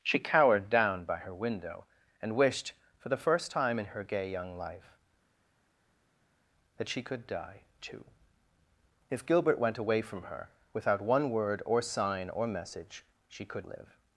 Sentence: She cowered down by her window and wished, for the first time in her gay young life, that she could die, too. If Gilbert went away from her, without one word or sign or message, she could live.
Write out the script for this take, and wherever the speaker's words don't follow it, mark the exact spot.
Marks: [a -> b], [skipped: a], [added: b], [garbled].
She cowered down by her window and wished, for the first time in her gay young life, that she could die, too. If Gilbert went away from her, without one word or sign or message, she could live.